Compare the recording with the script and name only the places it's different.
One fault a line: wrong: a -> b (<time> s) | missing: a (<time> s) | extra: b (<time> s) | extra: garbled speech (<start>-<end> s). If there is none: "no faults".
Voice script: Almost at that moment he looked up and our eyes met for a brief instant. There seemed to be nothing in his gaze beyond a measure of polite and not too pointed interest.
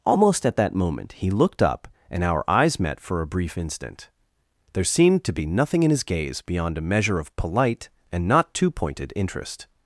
no faults